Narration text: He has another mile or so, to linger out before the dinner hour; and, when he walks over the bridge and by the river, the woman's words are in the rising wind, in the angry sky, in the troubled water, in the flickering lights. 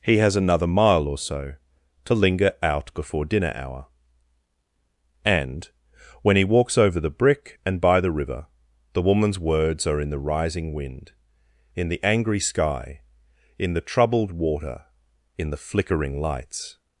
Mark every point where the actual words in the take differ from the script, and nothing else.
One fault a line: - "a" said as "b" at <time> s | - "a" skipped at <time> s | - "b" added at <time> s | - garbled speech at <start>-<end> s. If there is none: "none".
- "the" skipped at 3.2 s
- "bridge" said as "brick" at 7.1 s